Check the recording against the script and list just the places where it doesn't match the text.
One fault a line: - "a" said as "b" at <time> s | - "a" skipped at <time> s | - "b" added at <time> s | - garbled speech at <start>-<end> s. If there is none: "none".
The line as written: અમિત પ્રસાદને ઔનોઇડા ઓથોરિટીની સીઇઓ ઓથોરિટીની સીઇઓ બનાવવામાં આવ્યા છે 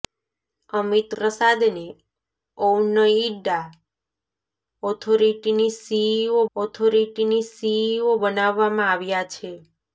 none